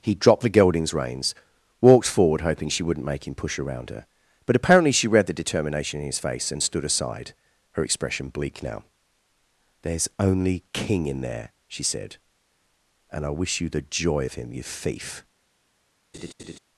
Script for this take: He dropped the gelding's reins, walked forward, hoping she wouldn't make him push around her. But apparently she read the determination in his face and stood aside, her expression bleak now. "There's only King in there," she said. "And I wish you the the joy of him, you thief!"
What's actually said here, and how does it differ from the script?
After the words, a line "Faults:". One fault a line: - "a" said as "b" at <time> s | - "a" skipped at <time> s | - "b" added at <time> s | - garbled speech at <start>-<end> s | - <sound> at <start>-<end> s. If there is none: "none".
He dropped the gelding's reins, walked forward, hoping she wouldn't make him push around her. But apparently she read the determination in his face and stood aside, her expression bleak now. "There's only King in there," she said. "And I wish you the joy of him, you thief!"
Faults:
- "the" skipped at 13.8 s
- laugh at 16.1-16.6 s